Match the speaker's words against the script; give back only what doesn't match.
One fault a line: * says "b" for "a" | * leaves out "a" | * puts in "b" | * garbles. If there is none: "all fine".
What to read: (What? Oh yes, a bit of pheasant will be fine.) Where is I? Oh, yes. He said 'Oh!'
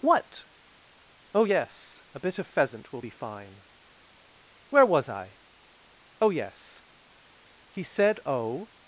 * says "was" for "is"